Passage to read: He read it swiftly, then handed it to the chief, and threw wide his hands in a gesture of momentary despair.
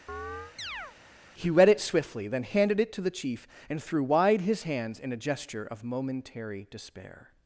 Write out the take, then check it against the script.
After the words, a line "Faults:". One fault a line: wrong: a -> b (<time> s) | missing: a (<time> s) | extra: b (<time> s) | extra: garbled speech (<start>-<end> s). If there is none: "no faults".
He read it swiftly, then handed it to the chief, and threw wide his hands in a gesture of momentary despair.
Faults:
no faults